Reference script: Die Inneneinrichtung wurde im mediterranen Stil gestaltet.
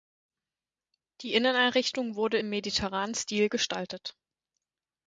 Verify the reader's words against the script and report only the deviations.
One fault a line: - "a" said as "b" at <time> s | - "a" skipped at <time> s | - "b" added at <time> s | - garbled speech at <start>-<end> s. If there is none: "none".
none